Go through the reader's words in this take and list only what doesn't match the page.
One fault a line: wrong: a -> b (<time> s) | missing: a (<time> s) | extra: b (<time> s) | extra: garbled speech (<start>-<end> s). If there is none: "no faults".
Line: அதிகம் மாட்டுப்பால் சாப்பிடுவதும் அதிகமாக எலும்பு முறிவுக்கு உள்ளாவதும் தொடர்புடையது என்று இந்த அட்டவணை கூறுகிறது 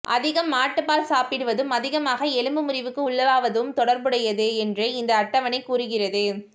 no faults